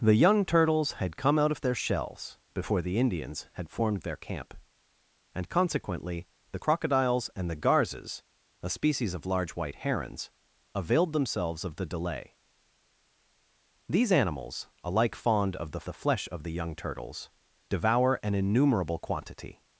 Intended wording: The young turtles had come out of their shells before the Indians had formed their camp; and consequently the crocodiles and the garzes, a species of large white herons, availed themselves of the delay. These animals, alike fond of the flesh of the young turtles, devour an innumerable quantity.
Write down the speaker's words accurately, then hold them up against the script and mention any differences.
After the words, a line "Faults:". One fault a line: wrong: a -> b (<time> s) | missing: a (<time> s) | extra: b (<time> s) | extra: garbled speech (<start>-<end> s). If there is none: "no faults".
The young turtles had come out of their shells before the Indians had formed their camp; and consequently the crocodiles and the garzes, a species of large white herons, availed themselves of the delay. These animals, alike fond of the the flesh of the young turtles, devour an innumerable quantity.
Faults:
extra: the (15.9 s)